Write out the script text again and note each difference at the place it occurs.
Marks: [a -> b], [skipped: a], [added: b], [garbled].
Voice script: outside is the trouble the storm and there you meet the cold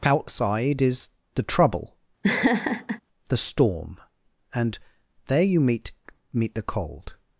outside is the trouble the storm and there you meet [added: meet] the cold